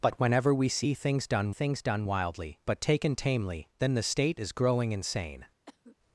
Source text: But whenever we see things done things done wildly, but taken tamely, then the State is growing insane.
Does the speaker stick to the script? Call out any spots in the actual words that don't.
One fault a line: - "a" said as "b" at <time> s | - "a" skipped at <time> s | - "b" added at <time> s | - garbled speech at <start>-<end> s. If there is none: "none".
none